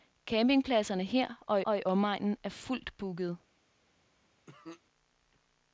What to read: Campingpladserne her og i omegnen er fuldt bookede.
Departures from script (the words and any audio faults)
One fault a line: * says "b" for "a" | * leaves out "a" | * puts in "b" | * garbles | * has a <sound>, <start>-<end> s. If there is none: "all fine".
* puts in "og"
* has a cough, 4.5-4.8 s